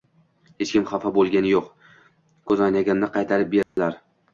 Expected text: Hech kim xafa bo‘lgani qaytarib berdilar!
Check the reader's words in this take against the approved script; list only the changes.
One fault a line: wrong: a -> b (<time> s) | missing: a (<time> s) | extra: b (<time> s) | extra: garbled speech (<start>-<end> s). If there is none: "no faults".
extra: yo‘q ko‘zoynagimni (1.5 s)